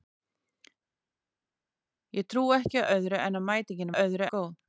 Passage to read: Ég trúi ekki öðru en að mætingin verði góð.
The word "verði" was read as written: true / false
false